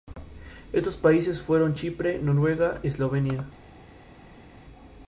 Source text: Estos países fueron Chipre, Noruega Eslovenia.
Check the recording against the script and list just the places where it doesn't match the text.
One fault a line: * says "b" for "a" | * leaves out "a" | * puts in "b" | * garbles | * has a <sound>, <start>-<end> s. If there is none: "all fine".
all fine